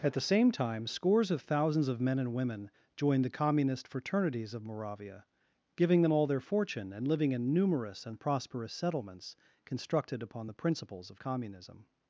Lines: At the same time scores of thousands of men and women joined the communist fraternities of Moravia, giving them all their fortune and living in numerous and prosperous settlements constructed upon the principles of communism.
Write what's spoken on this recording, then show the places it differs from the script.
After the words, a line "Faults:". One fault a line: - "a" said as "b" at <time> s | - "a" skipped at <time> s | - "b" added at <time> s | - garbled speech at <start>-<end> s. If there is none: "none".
At the same time scores of thousands of men and women joined the communist fraternities of Moravia, giving them all their fortune and living in numerous and prosperous settlements constructed upon the principles of communism.
Faults:
none